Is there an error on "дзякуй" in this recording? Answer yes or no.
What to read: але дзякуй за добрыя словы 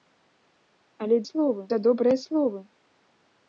yes